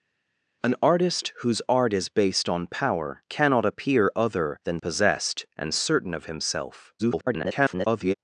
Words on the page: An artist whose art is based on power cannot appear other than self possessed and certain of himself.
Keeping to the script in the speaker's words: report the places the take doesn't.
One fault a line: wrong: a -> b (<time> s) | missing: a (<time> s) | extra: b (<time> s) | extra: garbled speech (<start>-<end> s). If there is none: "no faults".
missing: self (4.8 s)
extra: garbled speech (7.0-8.1 s)